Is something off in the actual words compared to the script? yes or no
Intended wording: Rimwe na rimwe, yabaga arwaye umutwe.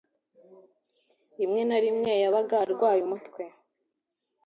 no